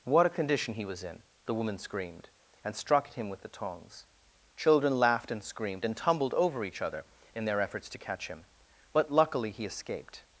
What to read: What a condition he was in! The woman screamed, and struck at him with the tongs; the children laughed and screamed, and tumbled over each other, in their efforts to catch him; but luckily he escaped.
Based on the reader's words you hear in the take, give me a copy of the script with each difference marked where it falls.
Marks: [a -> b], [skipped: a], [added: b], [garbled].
What a condition he was in! The woman screamed, and struck at him with the tongs; [skipped: the] children laughed and screamed, and tumbled over each other, in their efforts to catch him; but luckily he escaped.